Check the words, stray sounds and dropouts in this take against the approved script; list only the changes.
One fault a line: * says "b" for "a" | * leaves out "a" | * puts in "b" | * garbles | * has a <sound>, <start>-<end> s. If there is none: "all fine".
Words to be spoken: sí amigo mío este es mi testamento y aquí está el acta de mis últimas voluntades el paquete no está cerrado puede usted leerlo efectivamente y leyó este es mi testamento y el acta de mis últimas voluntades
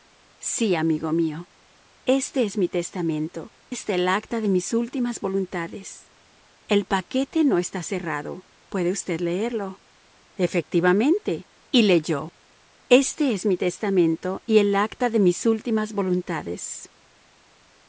* leaves out "y aquí"